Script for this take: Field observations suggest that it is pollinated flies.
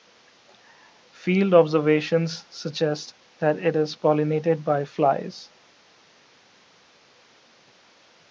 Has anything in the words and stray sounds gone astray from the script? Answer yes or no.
yes